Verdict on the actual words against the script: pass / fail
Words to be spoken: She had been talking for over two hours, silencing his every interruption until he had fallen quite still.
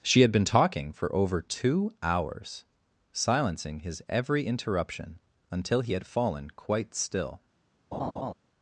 pass